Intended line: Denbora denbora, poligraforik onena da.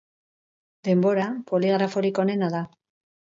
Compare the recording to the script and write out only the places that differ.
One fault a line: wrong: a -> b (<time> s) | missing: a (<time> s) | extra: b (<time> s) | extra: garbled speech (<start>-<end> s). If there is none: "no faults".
missing: denbora (1.3 s)